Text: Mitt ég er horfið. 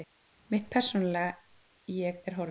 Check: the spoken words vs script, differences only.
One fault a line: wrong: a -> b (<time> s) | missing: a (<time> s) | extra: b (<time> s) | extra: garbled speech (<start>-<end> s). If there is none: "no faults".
extra: persónulega (0.7 s)